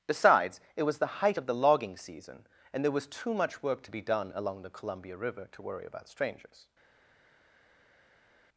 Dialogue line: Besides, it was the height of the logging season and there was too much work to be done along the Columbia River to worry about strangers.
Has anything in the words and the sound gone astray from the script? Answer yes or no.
no